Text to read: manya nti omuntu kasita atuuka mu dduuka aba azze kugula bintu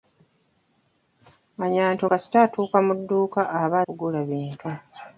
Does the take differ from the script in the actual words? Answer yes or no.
yes